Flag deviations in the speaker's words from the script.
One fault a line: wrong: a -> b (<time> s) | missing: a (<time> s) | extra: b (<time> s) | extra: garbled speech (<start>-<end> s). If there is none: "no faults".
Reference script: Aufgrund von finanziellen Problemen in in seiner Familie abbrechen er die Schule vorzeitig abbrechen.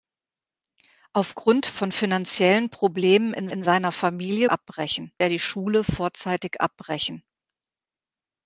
no faults